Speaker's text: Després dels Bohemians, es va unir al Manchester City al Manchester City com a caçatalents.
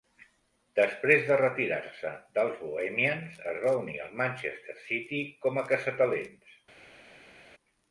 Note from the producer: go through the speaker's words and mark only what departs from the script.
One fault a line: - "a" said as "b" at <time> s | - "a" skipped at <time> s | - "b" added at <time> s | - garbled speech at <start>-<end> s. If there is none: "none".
- "de retirar se" added at 1.3 s
- "al Manchester City" skipped at 5.2 s